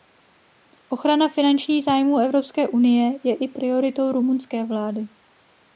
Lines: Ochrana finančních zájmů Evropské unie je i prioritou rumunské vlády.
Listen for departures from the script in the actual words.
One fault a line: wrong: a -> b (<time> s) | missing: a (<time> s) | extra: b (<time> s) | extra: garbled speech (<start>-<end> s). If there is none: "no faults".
no faults